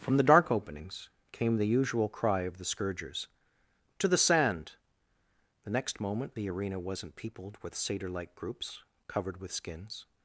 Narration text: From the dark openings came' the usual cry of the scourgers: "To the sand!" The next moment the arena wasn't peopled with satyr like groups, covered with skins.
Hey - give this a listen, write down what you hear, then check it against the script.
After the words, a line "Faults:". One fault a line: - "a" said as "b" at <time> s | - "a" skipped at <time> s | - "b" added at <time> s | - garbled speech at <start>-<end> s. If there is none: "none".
From the dark openings came' the usual cry of the scourgers: "To the sand!" The next moment the arena wasn't peopled with satyr like groups, covered with skins.
Faults:
none